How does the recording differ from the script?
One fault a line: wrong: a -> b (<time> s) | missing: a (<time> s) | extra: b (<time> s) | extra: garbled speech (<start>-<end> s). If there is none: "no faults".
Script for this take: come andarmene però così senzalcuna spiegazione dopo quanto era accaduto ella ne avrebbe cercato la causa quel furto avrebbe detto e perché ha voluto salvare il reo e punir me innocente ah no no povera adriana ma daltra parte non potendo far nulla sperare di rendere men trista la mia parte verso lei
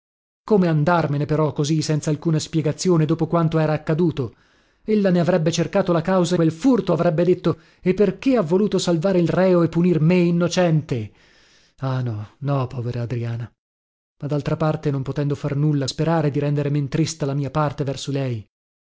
no faults